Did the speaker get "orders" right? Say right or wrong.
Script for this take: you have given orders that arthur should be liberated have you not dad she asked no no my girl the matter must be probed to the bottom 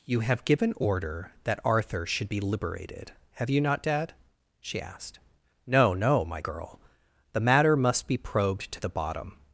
wrong